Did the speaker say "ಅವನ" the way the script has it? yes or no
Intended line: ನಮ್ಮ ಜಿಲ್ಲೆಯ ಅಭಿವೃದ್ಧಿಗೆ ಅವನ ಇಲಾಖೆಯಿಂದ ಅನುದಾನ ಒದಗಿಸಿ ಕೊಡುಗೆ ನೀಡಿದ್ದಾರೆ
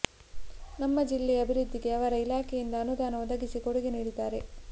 no